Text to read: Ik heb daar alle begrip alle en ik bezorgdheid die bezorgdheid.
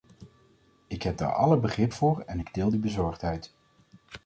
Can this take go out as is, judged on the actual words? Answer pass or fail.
fail